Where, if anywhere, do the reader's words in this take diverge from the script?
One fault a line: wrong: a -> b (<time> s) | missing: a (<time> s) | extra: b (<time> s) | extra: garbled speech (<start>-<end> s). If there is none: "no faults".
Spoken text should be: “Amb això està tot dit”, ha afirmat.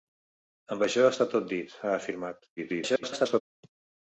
extra: garbled speech (2.6-3.4 s)